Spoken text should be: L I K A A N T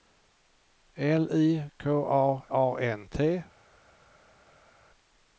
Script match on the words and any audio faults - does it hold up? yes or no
yes